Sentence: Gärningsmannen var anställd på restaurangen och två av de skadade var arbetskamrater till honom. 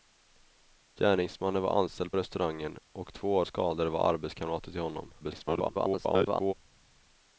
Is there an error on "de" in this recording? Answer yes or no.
yes